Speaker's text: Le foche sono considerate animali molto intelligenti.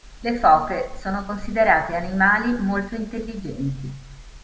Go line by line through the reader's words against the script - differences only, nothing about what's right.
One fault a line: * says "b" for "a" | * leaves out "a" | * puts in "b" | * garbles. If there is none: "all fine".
all fine